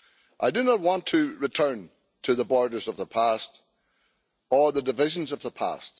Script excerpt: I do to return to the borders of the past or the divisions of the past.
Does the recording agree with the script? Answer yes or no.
no